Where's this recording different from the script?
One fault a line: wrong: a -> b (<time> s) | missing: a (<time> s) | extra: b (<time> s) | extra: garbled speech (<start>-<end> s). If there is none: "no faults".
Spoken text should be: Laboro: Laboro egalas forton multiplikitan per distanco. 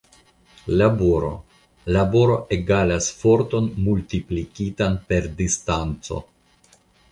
no faults